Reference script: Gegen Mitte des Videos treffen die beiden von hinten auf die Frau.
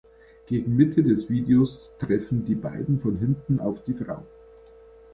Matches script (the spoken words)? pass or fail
pass